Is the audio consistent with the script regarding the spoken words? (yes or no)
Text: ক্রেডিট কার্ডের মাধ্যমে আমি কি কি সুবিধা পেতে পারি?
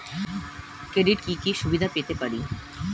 no